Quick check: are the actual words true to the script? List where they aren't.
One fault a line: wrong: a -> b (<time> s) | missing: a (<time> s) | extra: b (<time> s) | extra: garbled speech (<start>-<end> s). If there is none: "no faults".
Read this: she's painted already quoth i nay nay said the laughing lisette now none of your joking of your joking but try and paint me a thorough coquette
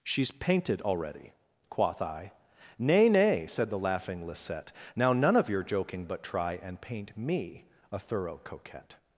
missing: of your joking (6.1 s)